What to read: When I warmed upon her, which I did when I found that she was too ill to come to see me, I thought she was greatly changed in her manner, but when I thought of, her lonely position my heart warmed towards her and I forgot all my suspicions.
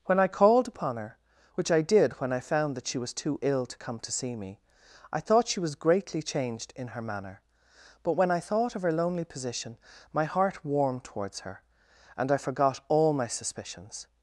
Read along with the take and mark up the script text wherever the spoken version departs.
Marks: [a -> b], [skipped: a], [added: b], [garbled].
When I [warmed -> called] upon her, which I did when I found that she was too ill to come to see me, I thought she was greatly changed in her manner, but when I thought of, her lonely position my heart warmed towards her and I forgot all my suspicions.